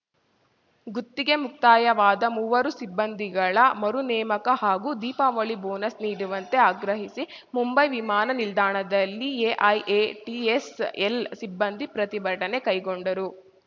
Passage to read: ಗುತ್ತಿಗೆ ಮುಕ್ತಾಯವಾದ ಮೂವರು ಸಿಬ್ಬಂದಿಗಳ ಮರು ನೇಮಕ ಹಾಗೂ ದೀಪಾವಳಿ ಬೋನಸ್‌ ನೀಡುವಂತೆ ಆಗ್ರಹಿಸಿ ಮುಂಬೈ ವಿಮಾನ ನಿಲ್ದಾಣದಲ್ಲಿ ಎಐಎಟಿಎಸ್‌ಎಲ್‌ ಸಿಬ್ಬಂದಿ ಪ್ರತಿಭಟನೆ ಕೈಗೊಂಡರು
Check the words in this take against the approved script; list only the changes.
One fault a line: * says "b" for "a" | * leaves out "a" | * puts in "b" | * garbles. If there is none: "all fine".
all fine